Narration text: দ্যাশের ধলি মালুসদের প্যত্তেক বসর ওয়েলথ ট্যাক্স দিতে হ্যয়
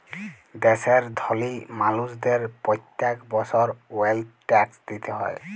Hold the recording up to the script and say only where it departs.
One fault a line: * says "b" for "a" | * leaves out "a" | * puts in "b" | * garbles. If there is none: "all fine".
all fine